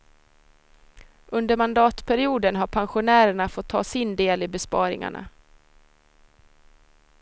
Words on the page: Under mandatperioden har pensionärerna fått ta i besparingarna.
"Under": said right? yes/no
yes